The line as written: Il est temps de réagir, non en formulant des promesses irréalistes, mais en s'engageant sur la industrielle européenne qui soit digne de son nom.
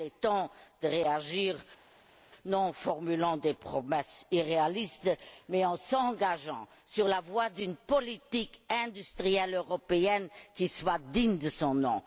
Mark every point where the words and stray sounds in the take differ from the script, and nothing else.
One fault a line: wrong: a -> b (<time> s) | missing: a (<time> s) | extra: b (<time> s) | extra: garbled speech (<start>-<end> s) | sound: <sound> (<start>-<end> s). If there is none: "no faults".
extra: voie d'une politique (7.2 s)